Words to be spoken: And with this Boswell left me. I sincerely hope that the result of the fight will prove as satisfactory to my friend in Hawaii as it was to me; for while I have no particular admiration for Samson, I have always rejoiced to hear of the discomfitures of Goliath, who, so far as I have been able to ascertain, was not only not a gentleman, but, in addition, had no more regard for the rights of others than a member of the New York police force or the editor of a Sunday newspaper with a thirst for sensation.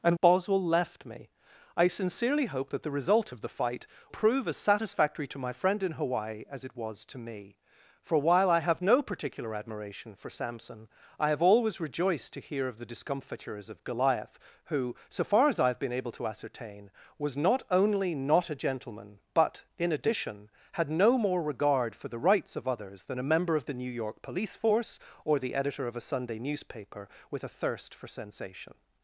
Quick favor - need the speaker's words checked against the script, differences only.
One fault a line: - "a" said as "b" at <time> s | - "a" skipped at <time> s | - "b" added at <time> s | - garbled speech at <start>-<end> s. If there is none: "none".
- "with this" skipped at 0.2 s
- "will" skipped at 3.9 s